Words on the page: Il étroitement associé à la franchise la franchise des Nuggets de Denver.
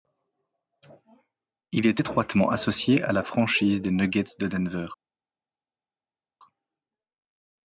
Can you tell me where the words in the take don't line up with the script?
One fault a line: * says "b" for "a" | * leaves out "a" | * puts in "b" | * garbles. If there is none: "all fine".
* puts in "est"
* leaves out "la franchise"